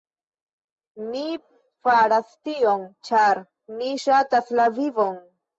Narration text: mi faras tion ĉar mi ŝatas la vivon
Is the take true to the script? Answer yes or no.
yes